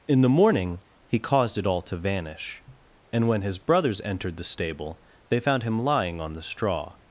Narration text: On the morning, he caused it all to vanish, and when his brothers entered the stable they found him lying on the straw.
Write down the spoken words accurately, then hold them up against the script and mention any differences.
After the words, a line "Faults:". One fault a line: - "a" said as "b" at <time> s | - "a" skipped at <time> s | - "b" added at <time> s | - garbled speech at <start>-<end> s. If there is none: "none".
In the morning, he caused it all to vanish, and when his brothers entered the stable they found him lying on the straw.
Faults:
- "On" said as "In" at 0.1 s